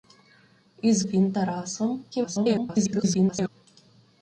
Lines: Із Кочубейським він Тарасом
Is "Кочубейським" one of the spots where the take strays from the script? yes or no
yes